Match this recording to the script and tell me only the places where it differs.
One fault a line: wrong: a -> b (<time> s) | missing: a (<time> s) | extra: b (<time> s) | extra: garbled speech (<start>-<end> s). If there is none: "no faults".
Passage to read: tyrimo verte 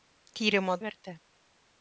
no faults